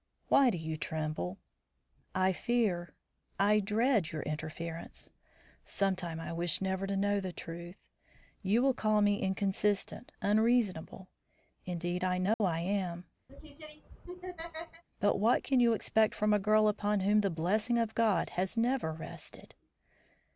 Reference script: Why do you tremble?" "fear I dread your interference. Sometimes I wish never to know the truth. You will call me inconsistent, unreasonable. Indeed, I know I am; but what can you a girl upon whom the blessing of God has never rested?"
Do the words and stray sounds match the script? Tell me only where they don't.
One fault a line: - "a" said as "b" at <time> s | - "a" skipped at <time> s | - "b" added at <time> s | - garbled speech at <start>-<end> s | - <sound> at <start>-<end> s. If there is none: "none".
- "I" added at 2.1 s
- dropout at 12.3-12.4 s
- laugh at 13.3-14.8 s
- "expect from" added at 15.7 s